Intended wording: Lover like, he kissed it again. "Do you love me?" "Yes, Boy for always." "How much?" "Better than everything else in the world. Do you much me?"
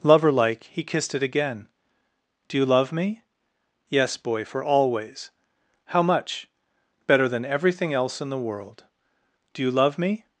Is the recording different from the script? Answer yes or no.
yes